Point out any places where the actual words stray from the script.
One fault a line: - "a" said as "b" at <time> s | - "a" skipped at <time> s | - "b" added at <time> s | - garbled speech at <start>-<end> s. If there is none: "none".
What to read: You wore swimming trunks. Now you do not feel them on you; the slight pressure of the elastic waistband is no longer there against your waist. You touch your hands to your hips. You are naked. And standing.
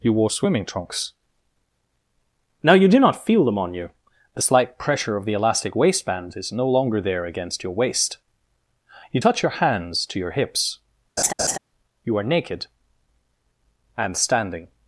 none